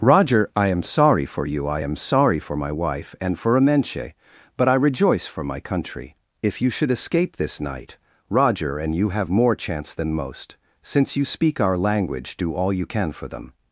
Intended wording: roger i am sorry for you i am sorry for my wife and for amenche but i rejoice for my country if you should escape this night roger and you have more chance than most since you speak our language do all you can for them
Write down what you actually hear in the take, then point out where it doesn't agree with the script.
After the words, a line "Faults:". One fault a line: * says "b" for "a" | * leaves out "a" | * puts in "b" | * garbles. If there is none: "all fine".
roger i am sorry for you i am sorry for my wife and for amenche but i rejoice for my country if you should escape this night roger and you have more chance than most since you speak our language do all you can for them
Faults:
all fine